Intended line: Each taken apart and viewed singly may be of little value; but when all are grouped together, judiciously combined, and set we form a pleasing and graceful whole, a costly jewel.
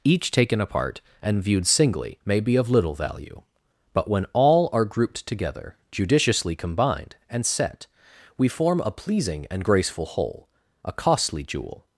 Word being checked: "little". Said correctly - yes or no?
yes